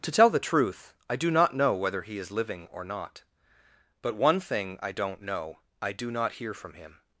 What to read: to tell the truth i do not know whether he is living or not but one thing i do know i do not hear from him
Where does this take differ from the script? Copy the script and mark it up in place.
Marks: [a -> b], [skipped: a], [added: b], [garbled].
to tell the truth i do not know whether he is living or not but one thing i [do -> don't] know i do not hear from him